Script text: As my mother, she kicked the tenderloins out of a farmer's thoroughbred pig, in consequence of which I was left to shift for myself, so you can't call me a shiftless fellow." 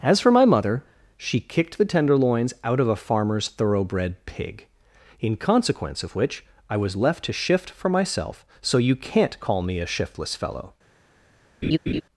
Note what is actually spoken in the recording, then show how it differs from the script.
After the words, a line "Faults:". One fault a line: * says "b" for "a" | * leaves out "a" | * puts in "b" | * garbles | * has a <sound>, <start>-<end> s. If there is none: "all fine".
As for my mother, she kicked the tenderloins out of a farmer's thoroughbred pig, in consequence of which I was left to shift for myself, so you can't call me a shiftless fellow."
Faults:
* puts in "for"
* has a laugh, 11.6-12.0 s